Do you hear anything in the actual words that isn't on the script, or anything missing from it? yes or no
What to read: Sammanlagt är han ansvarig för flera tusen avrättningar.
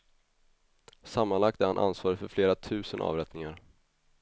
no